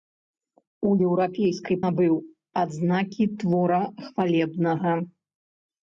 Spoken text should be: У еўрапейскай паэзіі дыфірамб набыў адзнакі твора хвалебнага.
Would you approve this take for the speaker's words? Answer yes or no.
no